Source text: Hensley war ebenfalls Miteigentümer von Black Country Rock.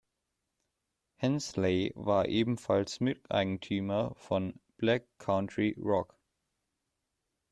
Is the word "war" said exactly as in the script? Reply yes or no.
yes